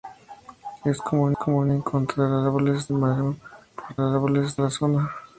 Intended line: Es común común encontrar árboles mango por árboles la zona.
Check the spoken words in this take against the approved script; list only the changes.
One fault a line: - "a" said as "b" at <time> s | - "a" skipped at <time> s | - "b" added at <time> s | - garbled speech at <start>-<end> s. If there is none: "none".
none